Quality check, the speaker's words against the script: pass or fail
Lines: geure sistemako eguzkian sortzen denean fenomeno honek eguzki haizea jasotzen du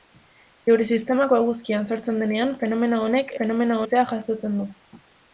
fail